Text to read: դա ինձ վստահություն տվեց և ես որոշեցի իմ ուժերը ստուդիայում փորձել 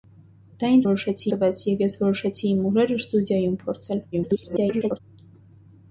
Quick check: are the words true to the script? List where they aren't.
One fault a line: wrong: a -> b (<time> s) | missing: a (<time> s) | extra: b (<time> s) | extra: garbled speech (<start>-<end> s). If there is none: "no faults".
wrong: վստահություն -> որոշեցի (0.8 s)
extra: garbled speech (4.1-5.0 s)